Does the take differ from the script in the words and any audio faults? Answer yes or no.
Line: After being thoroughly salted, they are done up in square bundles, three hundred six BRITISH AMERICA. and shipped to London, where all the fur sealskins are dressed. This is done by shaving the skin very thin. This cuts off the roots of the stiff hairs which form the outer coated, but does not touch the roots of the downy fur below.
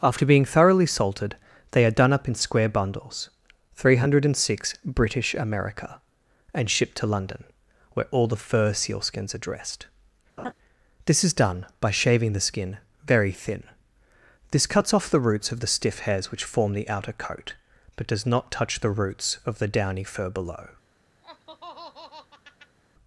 yes